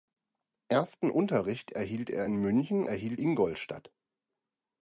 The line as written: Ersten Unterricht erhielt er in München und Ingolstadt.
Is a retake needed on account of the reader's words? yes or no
yes